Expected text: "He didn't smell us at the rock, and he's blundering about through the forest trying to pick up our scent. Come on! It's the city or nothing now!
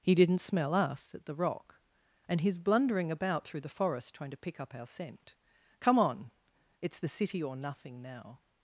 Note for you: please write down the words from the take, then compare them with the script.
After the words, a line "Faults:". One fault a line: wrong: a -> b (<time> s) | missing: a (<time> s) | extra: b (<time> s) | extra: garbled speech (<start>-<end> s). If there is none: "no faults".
"He didn't smell us at the rock, and he's blundering about through the forest trying to pick up our scent. Come on! It's the city or nothing now!
Faults:
no faults